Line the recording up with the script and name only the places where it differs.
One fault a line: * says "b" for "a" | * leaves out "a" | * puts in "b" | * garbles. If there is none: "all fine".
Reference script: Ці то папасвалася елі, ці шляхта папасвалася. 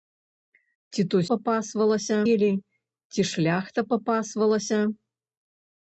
all fine